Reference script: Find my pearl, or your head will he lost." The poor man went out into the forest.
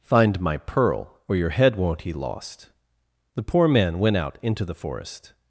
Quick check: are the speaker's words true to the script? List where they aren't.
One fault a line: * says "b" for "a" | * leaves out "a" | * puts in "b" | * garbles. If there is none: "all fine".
* says "won't" for "will"